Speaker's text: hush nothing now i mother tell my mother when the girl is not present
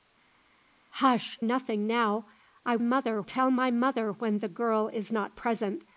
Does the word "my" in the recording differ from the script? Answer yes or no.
no